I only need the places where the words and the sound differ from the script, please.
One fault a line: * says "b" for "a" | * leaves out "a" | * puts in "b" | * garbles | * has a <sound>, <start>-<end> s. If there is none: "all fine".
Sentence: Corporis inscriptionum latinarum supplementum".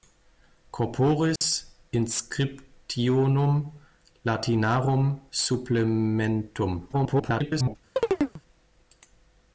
* has a dropout, 1.4-1.4 s
* garbles
* has a chirp, 8.0-8.4 s